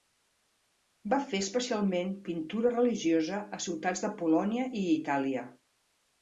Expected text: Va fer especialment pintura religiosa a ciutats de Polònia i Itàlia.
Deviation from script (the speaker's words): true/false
false